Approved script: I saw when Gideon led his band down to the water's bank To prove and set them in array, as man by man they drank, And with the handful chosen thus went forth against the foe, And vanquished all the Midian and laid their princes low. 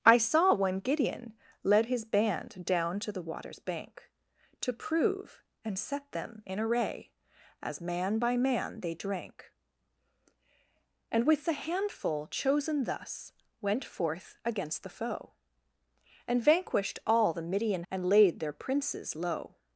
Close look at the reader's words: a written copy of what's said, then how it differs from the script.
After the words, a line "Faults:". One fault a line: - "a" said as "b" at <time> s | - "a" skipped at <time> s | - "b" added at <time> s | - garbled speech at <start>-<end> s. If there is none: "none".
I saw when Gideon led his band down to the water's bank To prove and set them in array, as man by man they drank, And with the handful chosen thus went forth against the foe, And vanquished all the Midian and laid their princes low.
Faults:
none